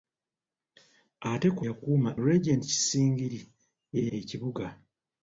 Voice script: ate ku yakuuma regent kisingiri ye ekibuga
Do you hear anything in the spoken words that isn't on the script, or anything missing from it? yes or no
no